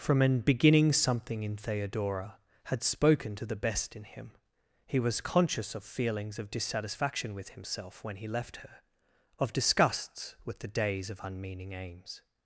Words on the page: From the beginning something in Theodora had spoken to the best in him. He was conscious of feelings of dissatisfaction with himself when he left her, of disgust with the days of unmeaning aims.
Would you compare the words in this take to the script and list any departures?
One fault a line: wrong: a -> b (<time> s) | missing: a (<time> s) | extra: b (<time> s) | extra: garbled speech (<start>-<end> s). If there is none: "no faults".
wrong: the -> an (0.2 s)
wrong: disgust -> disgusts (9.5 s)